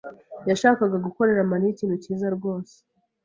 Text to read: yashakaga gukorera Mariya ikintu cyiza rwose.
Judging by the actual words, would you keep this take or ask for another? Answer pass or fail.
pass